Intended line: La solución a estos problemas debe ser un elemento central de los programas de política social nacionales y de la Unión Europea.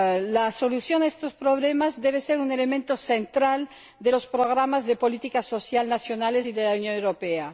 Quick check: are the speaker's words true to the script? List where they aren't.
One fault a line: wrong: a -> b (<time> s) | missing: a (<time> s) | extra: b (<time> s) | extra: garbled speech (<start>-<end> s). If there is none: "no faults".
no faults